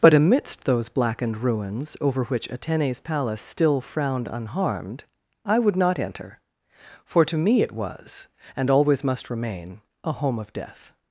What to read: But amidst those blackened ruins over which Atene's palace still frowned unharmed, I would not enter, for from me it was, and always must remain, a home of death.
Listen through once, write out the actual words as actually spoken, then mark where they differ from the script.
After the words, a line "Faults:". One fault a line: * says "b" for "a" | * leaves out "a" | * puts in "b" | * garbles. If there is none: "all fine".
But amidst those blackened ruins over which Atene's palace still frowned unharmed, I would not enter, for to me it was, and always must remain, a home of death.
Faults:
* says "to" for "from"